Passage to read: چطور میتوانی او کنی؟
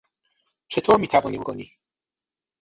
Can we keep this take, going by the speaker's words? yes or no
yes